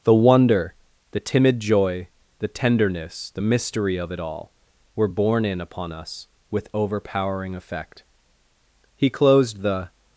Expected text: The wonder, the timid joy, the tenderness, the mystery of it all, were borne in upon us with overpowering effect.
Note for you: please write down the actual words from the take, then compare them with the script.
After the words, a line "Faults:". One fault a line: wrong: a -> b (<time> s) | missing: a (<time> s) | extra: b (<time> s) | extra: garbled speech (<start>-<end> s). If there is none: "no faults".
The wonder, the timid joy, the tenderness, the mystery of it all, were borne in upon us with overpowering effect. He closed the
Faults:
extra: He closed the (9.0 s)